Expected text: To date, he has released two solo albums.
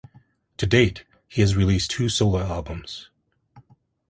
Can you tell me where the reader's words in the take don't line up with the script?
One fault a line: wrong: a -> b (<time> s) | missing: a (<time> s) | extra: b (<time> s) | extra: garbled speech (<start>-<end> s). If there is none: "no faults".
no faults